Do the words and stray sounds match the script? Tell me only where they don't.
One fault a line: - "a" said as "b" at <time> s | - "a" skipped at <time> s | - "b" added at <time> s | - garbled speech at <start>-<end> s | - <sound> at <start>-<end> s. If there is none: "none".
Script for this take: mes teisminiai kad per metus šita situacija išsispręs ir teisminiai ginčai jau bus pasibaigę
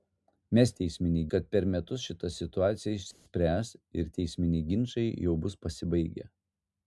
- dropout at 3.1-3.3 s